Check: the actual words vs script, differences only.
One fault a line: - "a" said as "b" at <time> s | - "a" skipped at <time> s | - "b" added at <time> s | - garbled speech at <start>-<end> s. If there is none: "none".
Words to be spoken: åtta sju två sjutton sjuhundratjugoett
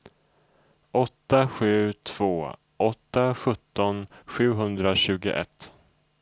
- "åtta" added at 2.8 s